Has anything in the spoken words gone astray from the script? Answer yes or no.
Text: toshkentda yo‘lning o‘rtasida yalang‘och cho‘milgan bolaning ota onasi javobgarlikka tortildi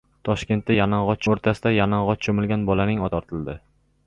yes